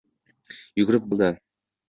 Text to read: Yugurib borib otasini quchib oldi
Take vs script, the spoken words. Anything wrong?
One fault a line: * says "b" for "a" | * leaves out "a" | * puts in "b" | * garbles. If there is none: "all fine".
* leaves out "borib otasini quchib"